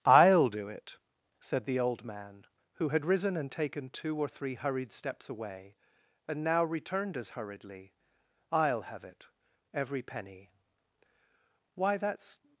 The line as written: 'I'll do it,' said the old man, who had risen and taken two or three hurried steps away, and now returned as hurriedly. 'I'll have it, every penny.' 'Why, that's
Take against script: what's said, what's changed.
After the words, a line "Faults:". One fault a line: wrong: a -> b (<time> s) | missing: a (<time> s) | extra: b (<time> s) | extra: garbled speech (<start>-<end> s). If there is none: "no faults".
'I'll do it,' said the old man, who had risen and taken two or three hurried steps away, and now returned as hurriedly. 'I'll have it, every penny.' 'Why, that's
Faults:
no faults